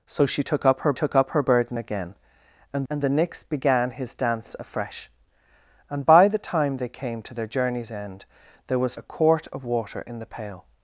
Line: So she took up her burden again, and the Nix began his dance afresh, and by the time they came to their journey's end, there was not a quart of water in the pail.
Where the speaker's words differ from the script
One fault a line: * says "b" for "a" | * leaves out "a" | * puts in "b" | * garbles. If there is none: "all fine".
* puts in "took up her"
* puts in "and"
* leaves out "not"